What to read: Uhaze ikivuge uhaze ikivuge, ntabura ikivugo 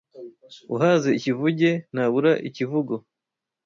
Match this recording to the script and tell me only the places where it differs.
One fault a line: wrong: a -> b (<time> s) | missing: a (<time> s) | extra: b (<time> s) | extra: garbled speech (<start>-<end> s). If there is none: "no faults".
missing: uhaze ikivuge (1.7 s)